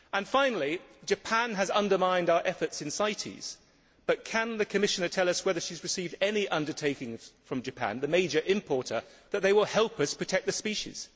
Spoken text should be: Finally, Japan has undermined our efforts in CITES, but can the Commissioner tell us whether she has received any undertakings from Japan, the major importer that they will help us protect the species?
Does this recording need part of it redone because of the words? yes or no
no